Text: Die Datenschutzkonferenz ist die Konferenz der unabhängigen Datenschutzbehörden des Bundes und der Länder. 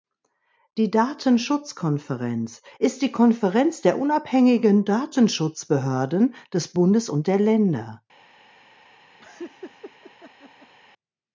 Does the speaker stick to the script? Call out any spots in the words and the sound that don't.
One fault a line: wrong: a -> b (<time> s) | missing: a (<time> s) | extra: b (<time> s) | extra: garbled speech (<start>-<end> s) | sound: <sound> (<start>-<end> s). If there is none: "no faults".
sound: laugh (9.2-10.7 s)